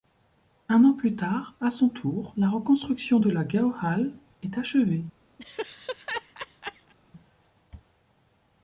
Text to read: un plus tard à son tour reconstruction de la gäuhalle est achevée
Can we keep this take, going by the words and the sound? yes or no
no